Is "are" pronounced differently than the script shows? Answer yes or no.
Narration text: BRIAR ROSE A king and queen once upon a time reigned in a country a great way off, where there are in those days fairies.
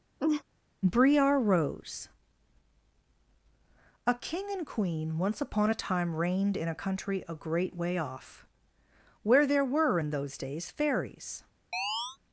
yes